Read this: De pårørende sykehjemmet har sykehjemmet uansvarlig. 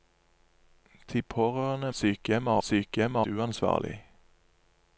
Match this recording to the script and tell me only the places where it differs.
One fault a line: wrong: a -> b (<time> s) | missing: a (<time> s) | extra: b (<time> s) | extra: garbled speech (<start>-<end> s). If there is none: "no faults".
no faults